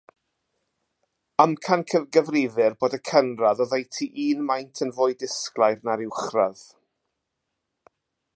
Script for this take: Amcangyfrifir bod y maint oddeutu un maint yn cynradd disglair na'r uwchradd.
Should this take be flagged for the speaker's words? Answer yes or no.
yes